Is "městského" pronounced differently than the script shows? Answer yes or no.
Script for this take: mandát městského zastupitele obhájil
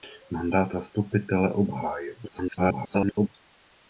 yes